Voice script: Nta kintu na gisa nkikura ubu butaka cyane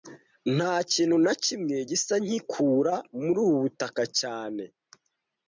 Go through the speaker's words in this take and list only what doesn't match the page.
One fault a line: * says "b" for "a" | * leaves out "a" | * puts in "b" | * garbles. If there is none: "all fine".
* puts in "kimwe"
* puts in "muri"